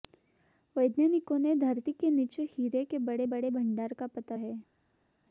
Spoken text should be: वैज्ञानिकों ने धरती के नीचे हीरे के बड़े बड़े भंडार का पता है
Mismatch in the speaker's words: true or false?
false